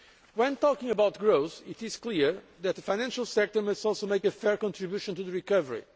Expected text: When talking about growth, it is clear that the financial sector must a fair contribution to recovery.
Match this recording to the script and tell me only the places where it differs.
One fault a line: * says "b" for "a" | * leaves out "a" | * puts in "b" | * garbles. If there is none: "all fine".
* puts in "also make"